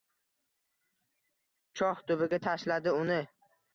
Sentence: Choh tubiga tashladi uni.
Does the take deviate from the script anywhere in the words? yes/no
no